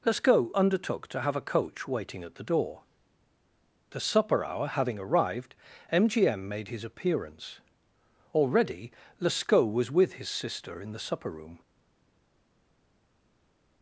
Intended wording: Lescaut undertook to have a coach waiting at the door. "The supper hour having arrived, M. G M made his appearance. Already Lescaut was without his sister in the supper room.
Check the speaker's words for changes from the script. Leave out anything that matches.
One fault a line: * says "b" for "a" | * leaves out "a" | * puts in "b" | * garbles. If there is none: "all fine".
* says "with" for "without"